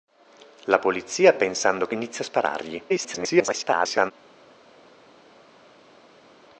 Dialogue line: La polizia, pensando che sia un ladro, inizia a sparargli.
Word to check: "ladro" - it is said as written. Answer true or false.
false